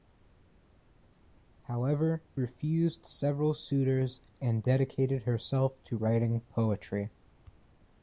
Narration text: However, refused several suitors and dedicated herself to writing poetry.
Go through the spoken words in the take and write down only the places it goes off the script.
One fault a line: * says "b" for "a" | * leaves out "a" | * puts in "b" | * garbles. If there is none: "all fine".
all fine